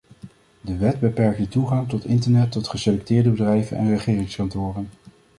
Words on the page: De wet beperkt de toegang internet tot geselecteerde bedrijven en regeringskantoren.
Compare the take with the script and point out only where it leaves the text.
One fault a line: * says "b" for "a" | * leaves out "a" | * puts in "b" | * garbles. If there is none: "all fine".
* puts in "tot"